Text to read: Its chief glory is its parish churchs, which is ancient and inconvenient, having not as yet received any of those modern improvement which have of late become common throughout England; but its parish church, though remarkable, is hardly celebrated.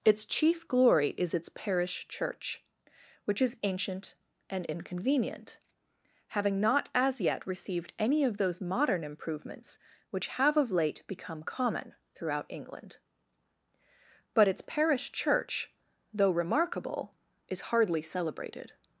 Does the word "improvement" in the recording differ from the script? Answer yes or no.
yes